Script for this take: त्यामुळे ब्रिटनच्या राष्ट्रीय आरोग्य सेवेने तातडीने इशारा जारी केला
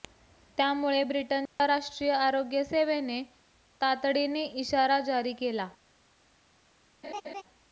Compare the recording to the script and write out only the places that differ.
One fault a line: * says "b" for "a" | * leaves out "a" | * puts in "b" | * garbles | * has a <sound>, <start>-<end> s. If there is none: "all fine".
* has a dropout, 1.5-1.6 s
* has a laugh, 7.0-7.4 s